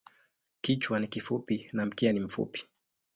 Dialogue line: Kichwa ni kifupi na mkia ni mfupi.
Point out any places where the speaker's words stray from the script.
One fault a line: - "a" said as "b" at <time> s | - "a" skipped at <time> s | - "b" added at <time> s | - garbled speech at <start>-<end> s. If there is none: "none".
none